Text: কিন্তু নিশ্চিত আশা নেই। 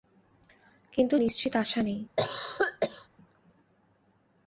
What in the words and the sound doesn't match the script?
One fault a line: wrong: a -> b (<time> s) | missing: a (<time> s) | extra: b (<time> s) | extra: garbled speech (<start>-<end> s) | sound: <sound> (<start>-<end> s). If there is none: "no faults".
sound: cough (2.2-3.1 s)